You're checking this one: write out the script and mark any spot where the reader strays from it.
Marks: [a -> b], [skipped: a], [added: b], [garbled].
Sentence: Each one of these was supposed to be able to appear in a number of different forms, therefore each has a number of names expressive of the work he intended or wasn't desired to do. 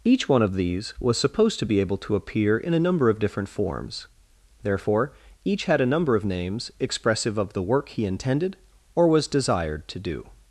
Each one of these was supposed to be able to appear in a number of different forms, therefore each [has -> had] a number of names expressive of the work he intended or [wasn't -> was] desired to do.